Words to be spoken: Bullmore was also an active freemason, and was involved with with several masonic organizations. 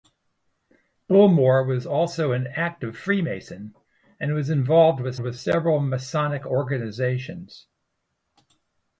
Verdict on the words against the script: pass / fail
pass